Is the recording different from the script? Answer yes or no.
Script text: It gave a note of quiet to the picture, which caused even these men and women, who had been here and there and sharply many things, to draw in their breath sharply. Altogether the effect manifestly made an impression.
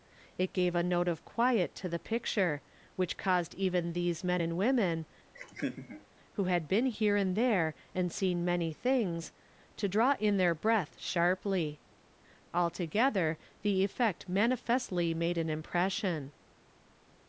yes